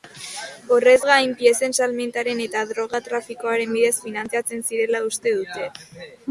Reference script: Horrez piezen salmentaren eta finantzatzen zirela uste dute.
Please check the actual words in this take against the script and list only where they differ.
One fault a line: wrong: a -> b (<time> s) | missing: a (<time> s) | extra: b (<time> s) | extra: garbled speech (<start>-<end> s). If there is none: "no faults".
extra: gain (1.1 s)
extra: droga trafikoaren bidez (2.7 s)